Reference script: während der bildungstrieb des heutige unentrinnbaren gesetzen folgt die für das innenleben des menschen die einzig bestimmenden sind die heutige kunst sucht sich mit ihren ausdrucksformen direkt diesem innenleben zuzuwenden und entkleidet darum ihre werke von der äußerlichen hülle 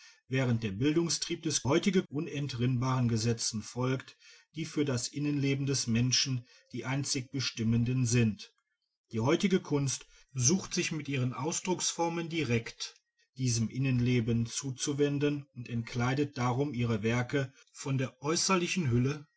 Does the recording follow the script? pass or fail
pass